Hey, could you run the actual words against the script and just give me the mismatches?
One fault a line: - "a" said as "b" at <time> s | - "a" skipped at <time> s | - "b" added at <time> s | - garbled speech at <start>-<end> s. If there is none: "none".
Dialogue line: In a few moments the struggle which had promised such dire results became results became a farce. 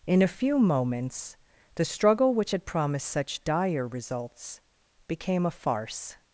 - "results became" skipped at 5.4 s